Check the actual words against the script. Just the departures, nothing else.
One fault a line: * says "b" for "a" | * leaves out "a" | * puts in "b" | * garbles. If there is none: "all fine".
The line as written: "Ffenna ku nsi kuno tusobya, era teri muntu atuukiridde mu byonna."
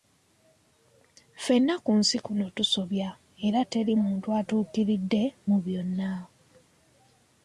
all fine